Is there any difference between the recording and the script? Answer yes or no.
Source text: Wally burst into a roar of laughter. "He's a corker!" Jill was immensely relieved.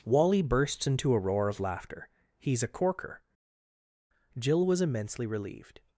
yes